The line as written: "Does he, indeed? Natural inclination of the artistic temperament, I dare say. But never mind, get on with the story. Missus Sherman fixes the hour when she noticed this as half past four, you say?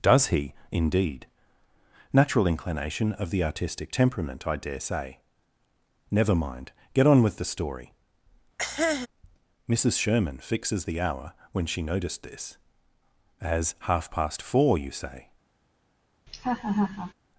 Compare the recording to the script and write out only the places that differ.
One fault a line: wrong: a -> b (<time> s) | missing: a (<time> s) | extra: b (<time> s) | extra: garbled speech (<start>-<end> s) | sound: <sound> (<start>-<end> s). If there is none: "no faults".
missing: But (5.2 s)
sound: cough (8.6-9.1 s)
sound: laugh (16.3-17.1 s)